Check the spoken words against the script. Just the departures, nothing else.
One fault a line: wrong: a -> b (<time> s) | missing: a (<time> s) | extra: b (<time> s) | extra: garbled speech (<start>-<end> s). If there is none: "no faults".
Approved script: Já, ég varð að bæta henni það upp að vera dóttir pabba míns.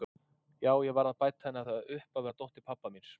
no faults